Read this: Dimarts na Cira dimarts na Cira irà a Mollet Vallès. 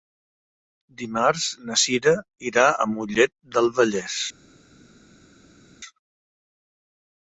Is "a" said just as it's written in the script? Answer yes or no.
yes